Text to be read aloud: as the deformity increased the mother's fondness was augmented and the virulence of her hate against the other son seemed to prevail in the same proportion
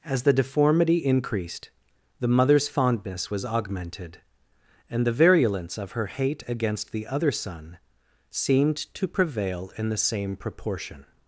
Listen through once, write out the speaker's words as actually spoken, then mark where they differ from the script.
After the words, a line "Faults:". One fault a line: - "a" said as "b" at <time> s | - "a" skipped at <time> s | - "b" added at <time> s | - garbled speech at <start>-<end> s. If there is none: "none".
as the deformity increased the mother's fondness was augmented and the virulence of her hate against the other son seemed to prevail in the same proportion
Faults:
none